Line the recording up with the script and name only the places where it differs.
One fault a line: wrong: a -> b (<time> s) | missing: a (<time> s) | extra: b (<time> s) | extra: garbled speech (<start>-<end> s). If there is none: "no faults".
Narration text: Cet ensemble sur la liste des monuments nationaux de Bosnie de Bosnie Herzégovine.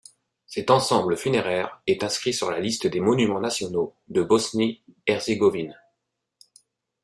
extra: funéraire est inscrit (1.1 s)
missing: de Bosnie (4.8 s)